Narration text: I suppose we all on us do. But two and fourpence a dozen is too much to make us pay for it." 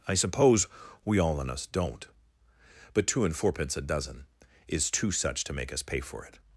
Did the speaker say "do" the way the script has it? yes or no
no